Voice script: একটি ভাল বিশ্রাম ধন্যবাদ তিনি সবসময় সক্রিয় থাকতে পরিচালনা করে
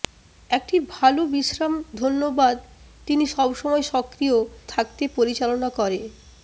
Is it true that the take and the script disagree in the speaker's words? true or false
false